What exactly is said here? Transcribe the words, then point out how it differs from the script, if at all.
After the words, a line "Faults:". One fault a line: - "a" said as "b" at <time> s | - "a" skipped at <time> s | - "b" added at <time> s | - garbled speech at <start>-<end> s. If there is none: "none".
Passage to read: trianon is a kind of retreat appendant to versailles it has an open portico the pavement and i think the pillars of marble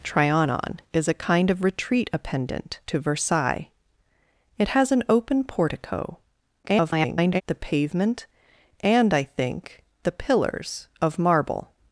trianon is a kind of retreat appendant to versailles it has an open portico [garbled] the pavement and i think the pillars of marble
Faults:
- garbled speech at 6.6-7.4 s